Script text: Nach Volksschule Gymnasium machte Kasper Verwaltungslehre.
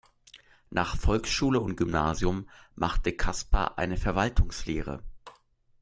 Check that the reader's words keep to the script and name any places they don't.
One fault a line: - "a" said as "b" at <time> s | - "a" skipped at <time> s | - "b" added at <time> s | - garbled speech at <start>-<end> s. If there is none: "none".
- "und" added at 1.6 s
- "eine" added at 3.8 s